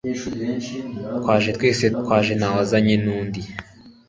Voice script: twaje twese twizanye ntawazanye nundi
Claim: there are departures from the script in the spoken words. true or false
true